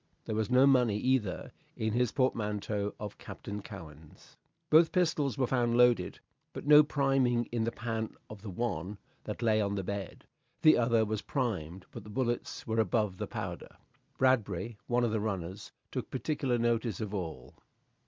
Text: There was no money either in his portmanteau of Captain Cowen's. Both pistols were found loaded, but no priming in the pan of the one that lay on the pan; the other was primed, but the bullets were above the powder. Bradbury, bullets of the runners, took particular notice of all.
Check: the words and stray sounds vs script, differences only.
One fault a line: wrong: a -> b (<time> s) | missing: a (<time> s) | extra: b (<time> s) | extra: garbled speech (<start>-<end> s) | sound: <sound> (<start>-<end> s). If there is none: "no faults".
wrong: pan -> bed (9.8 s)
wrong: bullets -> one (14.8 s)